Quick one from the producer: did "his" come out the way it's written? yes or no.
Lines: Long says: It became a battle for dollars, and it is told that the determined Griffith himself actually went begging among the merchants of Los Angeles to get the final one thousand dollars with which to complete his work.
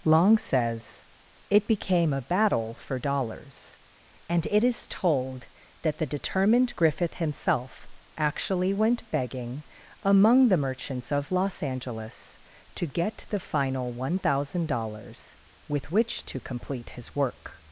yes